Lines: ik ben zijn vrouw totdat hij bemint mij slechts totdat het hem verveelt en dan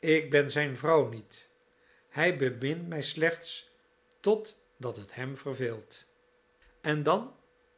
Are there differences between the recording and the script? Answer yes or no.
yes